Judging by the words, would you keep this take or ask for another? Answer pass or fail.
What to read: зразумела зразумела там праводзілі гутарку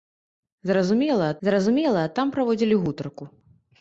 pass